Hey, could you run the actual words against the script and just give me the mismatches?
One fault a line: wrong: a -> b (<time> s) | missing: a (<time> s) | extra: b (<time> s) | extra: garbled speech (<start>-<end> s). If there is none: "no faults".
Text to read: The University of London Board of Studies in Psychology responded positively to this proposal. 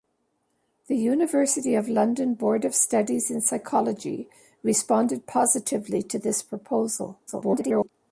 extra: garbled speech (7.3-7.9 s)